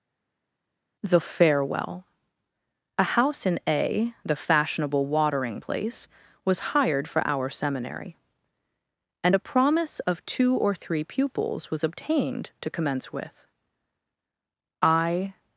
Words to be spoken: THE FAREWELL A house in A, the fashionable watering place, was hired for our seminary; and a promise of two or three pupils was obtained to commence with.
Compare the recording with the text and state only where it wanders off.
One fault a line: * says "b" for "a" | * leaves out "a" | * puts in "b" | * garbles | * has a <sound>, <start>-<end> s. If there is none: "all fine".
* puts in "I"